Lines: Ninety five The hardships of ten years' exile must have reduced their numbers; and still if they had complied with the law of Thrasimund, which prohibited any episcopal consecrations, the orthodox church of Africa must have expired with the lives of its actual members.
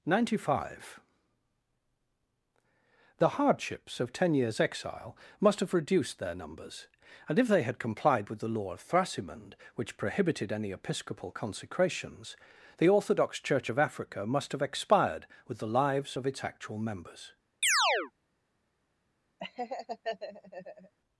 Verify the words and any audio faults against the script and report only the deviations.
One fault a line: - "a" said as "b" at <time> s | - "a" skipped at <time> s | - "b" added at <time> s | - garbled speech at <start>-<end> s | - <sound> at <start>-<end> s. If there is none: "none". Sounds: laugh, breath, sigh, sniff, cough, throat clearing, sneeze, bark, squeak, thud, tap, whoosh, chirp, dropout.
- "still" skipped at 7.4 s
- chirp at 17.6-18.1 s
- laugh at 19.4-20.9 s